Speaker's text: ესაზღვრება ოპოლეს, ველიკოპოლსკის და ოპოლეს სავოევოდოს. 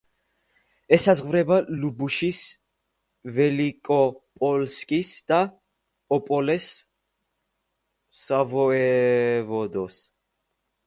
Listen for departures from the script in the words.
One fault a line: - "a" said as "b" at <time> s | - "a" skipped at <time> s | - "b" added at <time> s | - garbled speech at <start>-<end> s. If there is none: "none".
- "ოპოლეს" said as "ლუბუშის" at 1.8 s